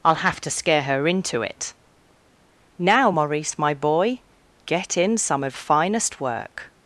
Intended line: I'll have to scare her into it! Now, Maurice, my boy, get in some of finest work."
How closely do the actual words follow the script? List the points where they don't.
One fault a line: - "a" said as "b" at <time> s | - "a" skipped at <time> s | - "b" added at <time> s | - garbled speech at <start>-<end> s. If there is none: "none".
none